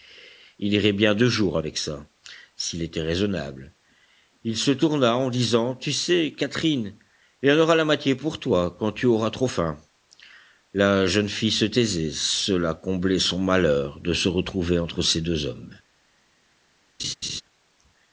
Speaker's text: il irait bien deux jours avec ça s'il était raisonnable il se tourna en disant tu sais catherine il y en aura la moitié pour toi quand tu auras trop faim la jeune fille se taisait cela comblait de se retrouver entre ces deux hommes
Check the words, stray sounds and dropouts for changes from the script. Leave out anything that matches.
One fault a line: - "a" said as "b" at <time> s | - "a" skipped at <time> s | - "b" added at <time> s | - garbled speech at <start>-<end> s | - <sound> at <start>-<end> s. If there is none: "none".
- "son malheur" added at 13.2 s
- laugh at 17.0-17.4 s